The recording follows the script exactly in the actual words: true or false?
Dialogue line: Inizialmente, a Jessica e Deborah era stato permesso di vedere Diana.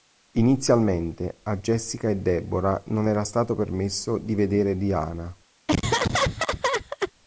false